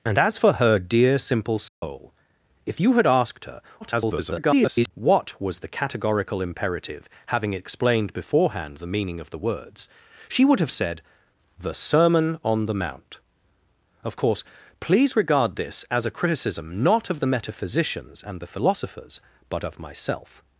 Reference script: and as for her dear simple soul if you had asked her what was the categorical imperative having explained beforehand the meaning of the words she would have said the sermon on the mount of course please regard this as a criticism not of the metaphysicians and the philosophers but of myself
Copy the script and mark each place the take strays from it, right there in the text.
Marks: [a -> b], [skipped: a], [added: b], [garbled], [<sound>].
and as for her dear simple soul [dropout] if you had asked her [garbled] what was the categorical imperative having explained beforehand the meaning of the words she would have said the sermon on the mount of course please regard this as a criticism not of the metaphysicians and the philosophers but of myself